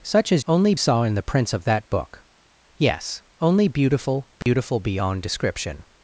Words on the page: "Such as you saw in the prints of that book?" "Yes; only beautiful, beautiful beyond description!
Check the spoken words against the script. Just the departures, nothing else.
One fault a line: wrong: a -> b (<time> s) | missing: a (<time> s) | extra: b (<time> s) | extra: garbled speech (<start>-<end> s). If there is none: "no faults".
wrong: you -> only (0.5 s)